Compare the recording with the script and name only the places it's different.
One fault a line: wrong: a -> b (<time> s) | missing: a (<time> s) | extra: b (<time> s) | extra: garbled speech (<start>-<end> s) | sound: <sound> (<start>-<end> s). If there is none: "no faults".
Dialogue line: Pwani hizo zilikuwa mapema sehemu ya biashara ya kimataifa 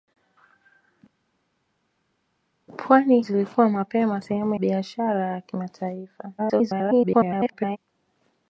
missing: hizo (3.2 s)
missing: ya (4.5 s)
extra: garbled speech (6.4-7.8 s)